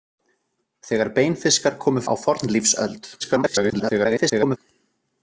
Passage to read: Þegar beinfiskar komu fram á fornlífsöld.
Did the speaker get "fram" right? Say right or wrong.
wrong